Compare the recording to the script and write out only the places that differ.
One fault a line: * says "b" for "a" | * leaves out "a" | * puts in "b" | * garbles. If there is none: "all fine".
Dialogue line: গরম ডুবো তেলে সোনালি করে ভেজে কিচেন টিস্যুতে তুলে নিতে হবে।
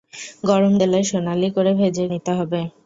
* leaves out "ডুবো"
* leaves out "কিচেন টিস্যুতে তুলে"